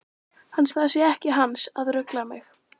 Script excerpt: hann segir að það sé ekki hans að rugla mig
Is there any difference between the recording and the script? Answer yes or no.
yes